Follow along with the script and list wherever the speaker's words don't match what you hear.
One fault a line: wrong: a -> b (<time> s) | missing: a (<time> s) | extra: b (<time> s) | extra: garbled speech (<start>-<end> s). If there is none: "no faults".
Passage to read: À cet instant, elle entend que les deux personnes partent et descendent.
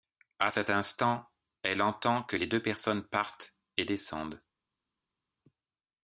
no faults